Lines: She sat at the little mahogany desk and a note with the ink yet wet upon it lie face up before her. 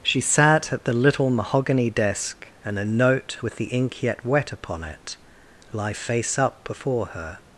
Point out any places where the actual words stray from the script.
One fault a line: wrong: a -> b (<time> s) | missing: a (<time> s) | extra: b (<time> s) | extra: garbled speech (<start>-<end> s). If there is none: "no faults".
no faults